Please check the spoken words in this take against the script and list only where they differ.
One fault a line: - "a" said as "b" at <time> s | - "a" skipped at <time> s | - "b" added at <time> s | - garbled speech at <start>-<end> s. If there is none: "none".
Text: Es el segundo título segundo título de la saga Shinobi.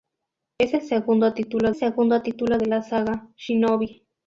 none